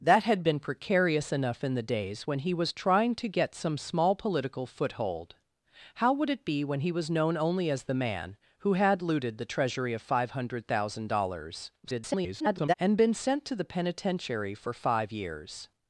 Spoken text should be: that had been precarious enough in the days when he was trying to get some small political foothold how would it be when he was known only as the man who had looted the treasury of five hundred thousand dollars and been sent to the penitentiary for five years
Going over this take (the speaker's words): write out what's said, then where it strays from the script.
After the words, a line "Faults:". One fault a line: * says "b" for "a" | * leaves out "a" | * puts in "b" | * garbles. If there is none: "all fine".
that had been precarious enough in the days when he was trying to get some small political foothold how would it be when he was known only as the man who had looted the treasury of five hundred thousand dollars [garbled] and been sent to the penitentiary for five years
Faults:
* garbles